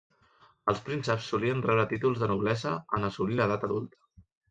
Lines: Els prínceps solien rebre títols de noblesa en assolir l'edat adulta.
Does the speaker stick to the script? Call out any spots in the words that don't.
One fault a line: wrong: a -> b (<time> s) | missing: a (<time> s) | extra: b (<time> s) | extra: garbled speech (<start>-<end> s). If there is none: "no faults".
no faults